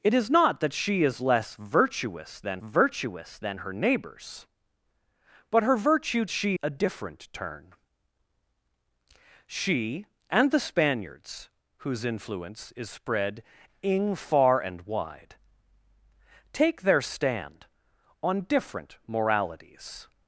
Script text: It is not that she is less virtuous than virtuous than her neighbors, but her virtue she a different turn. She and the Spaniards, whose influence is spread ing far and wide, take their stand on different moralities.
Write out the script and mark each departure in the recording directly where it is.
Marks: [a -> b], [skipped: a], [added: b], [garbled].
It is not that she is less virtuous than virtuous than her neighbors, but her virtue she a different turn. She and the Spaniards, whose influence is spread ing far and wide, take their stand on different moralities.